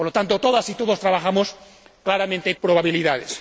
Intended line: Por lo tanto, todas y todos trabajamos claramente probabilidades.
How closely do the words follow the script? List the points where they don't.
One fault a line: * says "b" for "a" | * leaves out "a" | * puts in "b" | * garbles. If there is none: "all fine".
all fine